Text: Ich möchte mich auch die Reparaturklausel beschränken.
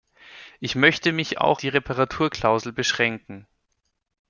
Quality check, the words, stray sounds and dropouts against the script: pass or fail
pass